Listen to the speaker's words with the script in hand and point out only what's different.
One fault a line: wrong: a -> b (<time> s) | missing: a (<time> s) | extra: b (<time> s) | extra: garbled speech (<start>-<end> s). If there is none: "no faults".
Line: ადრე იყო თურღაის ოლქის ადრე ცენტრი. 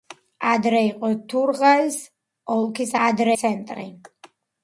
no faults